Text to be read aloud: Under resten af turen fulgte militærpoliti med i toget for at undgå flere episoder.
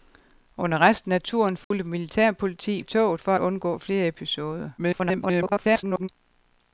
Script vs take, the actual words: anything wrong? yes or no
yes